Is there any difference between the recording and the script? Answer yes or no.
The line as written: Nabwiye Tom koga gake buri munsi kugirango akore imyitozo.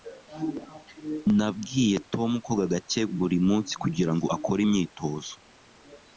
no